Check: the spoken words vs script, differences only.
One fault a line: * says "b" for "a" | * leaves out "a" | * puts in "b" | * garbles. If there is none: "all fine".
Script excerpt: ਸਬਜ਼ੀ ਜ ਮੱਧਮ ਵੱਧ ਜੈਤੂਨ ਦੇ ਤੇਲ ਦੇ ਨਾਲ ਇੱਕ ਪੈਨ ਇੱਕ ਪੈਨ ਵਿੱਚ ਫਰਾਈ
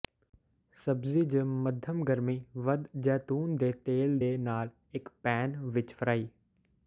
* puts in "ਗਰਮੀ"
* leaves out "ਇੱਕ ਪੈਨ"